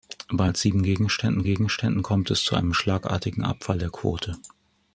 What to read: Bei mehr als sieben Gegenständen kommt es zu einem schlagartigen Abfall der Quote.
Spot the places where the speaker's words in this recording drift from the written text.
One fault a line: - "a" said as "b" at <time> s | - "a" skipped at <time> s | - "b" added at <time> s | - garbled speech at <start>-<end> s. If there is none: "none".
- "mehr" skipped at 0.5 s
- "Gegenständen" added at 1.4 s